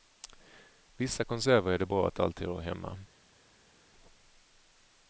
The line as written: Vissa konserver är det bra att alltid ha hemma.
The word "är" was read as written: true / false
true